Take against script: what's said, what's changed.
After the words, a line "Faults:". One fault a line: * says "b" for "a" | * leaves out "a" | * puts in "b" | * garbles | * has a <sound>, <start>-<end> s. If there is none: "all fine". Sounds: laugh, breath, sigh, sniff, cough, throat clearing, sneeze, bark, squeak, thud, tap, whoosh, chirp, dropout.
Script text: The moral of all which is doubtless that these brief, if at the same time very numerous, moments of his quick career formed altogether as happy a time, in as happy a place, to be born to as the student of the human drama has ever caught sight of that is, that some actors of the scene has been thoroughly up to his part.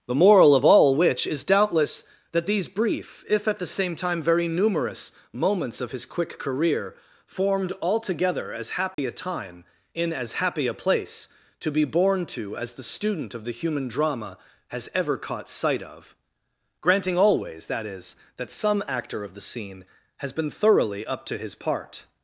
The moral of all which is doubtless that these brief, if at the same time very numerous, moments of his quick career formed altogether as happy a time, in as happy a place, to be born to as the student of the human drama has ever caught sight of granting always, that is, that some actor of the scene has been thoroughly up to his part.
Faults:
* has a dropout, 8.9-9.0 s
* puts in "granting always"
* says "actor" for "actors"